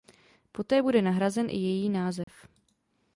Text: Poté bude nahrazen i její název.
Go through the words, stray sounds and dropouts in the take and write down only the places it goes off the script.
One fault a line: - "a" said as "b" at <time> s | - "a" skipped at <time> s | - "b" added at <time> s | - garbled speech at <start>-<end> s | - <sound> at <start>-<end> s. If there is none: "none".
- dropout at 2.2-2.3 s